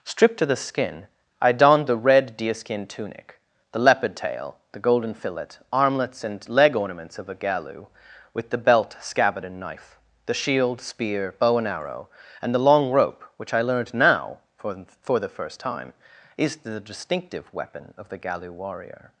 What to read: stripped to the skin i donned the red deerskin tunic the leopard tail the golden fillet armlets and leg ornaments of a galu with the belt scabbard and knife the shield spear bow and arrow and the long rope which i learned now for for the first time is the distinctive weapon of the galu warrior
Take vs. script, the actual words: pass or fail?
pass